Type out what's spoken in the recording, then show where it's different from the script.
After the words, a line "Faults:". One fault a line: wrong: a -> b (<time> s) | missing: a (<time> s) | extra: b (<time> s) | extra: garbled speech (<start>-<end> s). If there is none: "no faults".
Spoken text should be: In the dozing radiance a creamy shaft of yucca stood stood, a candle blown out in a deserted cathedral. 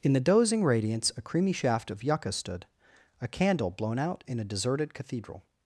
In the dozing radiance a creamy shaft of yucca stood, a candle blown out in a deserted cathedral.
Faults:
missing: stood (2.6 s)